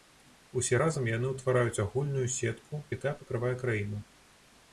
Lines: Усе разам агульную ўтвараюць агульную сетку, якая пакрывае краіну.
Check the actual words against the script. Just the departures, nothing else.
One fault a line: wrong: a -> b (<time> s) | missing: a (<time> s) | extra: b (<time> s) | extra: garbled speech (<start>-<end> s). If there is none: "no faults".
wrong: агульную -> яны (1.2 s)